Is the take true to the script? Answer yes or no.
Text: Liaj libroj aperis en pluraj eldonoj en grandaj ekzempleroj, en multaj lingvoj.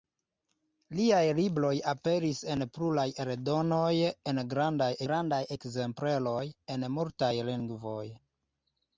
no